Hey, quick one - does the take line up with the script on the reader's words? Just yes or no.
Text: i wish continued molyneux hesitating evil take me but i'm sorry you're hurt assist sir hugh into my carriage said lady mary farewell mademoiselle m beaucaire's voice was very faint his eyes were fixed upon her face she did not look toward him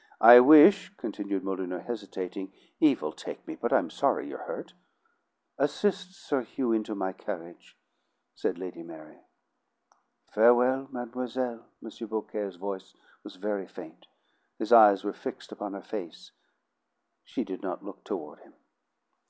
yes